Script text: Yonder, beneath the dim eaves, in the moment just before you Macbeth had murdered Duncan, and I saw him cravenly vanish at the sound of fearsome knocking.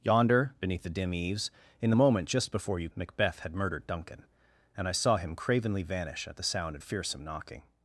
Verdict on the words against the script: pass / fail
pass